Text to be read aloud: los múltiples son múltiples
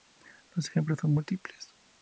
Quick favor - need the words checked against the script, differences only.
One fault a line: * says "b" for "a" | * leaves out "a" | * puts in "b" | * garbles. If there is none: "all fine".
* says "ejemplos" for "múltiples"